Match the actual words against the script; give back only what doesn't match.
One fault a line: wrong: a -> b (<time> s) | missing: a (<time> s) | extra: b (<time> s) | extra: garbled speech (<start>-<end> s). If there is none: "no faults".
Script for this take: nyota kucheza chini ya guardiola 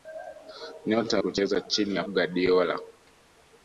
no faults